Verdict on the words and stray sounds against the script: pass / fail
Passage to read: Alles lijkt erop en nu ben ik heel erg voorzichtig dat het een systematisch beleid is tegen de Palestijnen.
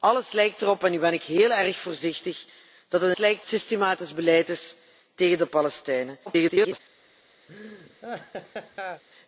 fail